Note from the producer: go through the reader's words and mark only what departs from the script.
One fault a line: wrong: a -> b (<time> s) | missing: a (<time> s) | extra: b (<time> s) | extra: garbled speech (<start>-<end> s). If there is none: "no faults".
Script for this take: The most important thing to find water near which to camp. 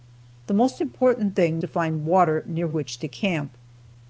no faults